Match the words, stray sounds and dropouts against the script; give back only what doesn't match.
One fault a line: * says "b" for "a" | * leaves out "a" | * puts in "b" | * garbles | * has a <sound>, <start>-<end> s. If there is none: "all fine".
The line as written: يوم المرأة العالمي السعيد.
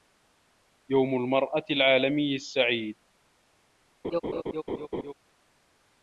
* has a laugh, 4.0-5.1 s